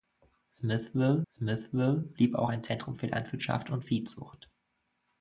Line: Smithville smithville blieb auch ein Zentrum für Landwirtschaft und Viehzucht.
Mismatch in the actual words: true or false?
false